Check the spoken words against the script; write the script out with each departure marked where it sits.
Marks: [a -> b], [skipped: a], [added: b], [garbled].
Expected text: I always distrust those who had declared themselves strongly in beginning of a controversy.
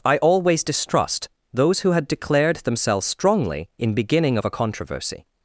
I always distrust those who had declared themselves strongly in beginning of a controversy.